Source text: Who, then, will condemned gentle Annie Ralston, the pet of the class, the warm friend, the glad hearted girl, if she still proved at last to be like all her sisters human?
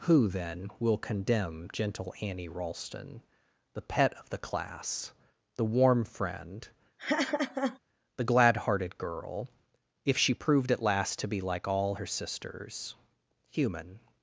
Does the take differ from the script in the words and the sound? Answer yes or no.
yes